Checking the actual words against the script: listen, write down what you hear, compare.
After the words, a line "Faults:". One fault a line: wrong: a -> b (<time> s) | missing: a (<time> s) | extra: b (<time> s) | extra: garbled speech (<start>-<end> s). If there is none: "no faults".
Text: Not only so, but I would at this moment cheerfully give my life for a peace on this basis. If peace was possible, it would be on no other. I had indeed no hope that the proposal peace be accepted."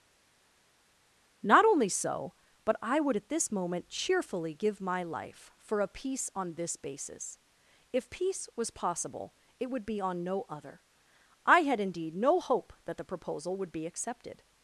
Not only so, but I would at this moment cheerfully give my life for a peace on this basis. If peace was possible, it would be on no other. I had indeed no hope that the proposal would be accepted."
Faults:
wrong: peace -> would (13.6 s)